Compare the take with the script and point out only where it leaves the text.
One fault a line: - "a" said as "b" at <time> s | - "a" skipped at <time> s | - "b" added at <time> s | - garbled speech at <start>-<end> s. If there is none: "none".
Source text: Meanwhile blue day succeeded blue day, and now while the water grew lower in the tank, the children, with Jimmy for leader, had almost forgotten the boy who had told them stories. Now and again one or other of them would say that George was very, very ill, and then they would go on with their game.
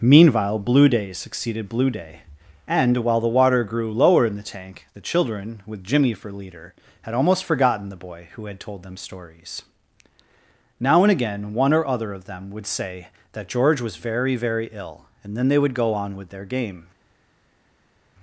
- "now" skipped at 3.0 s